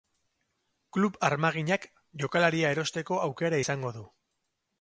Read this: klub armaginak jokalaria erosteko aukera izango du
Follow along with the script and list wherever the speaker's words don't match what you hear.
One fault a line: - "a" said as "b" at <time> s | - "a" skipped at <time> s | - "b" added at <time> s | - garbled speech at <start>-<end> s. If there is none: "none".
none